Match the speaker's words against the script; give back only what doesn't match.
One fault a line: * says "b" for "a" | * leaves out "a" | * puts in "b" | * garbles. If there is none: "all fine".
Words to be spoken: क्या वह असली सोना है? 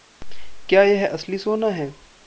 * says "यह" for "वह"